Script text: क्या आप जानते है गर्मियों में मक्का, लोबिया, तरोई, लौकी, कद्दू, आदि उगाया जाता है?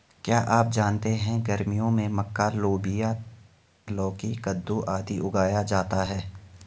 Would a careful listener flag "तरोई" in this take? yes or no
yes